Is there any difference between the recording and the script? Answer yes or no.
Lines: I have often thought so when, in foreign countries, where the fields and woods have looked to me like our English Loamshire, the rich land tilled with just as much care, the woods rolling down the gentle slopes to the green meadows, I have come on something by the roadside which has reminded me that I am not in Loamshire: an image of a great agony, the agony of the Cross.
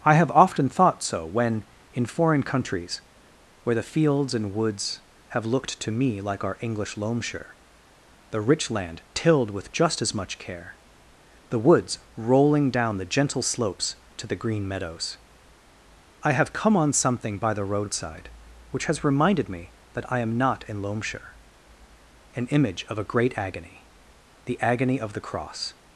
no